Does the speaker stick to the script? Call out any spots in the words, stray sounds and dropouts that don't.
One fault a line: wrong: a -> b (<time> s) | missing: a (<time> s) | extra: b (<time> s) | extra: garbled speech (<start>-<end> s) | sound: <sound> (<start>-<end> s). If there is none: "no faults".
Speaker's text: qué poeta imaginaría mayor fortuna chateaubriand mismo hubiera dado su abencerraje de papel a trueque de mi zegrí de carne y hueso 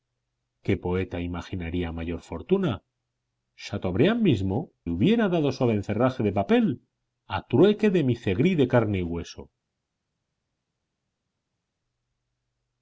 no faults